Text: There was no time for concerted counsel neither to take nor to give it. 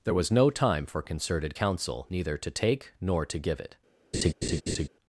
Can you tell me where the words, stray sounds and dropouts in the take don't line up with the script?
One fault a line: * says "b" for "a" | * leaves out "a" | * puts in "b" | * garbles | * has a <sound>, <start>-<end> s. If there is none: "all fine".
* has a laugh, 4.1-4.9 s